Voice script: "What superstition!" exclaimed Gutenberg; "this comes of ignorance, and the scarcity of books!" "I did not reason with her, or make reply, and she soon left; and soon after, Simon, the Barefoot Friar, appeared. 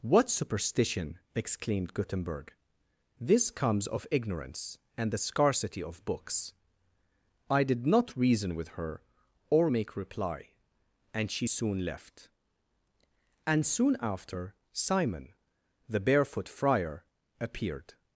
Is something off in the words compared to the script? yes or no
no